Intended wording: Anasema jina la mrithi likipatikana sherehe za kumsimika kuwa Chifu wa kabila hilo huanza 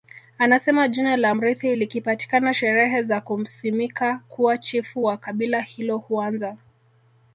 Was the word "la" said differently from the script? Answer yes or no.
no